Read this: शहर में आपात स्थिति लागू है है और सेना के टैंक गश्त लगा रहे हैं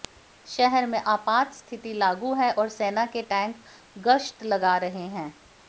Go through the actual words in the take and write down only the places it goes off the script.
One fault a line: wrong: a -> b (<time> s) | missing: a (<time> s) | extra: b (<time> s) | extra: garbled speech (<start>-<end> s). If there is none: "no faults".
missing: है (2.5 s)